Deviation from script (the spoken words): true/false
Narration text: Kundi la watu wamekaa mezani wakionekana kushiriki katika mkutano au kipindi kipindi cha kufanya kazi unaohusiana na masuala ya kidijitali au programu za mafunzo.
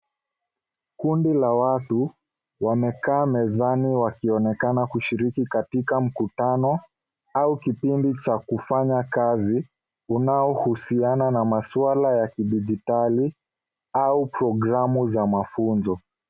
true